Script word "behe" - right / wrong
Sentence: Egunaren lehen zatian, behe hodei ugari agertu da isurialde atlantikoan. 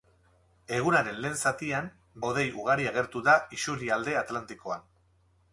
wrong